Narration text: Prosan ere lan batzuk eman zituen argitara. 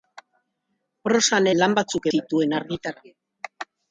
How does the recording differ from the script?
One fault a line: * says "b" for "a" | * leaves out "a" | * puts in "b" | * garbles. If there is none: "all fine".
* leaves out "ere"
* leaves out "eman"